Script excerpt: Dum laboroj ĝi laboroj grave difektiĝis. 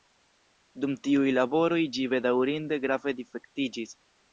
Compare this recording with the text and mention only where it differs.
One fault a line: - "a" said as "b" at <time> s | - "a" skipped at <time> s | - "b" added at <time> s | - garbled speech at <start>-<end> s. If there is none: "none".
- "tiuj" added at 1.1 s
- "laboroj" said as "bedaŭrinde" at 2.2 s